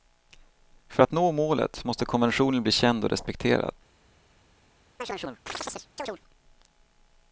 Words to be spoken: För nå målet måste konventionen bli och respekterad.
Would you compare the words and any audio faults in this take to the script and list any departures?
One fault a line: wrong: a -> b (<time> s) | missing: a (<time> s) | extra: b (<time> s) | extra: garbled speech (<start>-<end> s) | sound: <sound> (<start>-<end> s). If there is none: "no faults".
extra: att (1.0 s)
extra: känd (2.7 s)
sound: chirp (5.0-6.2 s)